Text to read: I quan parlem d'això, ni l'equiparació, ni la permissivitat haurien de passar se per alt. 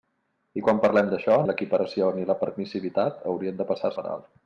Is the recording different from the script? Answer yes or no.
yes